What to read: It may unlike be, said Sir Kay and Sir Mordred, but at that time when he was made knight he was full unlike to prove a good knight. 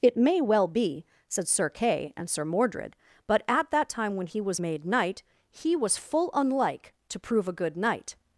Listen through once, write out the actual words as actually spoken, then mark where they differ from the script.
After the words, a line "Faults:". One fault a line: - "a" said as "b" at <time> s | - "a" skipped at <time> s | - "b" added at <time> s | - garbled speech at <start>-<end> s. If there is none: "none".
It may well be, said Sir Kay and Sir Mordred, but at that time when he was made knight he was full unlike to prove a good knight.
Faults:
- "unlike" said as "well" at 0.4 s